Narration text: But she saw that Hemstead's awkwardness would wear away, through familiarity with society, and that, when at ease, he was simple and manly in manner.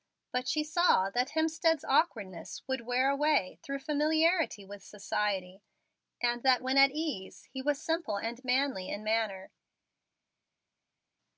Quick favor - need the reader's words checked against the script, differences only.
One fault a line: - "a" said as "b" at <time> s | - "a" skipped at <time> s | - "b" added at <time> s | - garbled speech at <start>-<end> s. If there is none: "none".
none